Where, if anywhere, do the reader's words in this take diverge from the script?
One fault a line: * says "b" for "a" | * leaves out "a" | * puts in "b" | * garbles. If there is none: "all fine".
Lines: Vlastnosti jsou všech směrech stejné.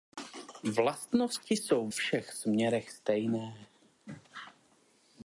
all fine